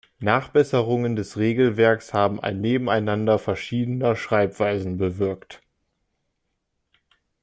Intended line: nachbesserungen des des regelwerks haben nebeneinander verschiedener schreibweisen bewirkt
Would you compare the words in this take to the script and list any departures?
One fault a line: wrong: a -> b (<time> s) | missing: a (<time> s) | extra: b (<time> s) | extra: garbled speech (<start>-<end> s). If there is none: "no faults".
missing: des (1.4 s)
extra: ein (2.4 s)